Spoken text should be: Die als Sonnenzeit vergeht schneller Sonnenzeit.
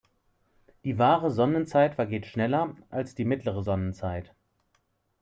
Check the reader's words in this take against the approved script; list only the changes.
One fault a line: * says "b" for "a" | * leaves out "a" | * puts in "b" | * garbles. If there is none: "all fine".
* says "wahre" for "als"
* puts in "als die mittlere"